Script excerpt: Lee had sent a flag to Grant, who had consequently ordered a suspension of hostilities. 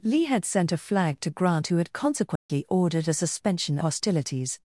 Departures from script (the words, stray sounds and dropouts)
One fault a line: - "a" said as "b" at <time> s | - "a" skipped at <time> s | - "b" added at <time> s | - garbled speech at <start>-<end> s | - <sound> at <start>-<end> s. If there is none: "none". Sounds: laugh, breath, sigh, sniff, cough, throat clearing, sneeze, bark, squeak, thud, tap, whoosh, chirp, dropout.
- dropout at 2.4-2.5 s
- "of" skipped at 3.8 s